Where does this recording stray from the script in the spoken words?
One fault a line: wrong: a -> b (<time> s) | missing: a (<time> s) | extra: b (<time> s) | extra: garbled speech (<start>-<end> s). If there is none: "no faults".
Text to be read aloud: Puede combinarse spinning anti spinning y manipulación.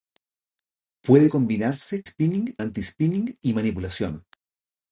no faults